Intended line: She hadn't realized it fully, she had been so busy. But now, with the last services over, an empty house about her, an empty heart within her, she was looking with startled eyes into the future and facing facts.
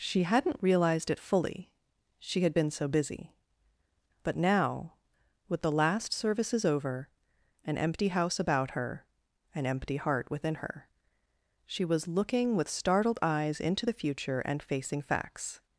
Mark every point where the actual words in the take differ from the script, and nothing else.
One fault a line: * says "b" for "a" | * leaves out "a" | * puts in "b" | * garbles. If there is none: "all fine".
all fine